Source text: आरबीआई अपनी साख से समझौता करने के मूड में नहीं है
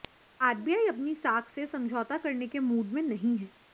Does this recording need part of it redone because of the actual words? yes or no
no